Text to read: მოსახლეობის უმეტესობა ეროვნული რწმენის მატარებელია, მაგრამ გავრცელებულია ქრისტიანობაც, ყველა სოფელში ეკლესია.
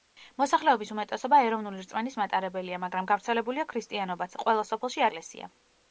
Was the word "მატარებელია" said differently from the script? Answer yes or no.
no